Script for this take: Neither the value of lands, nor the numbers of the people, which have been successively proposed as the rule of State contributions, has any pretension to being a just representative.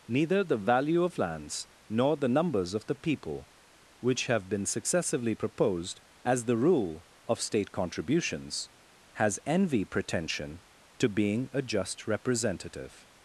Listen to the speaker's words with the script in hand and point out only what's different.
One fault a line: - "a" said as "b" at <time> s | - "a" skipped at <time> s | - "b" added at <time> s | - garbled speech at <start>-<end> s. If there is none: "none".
- "any" said as "envy" at 9.5 s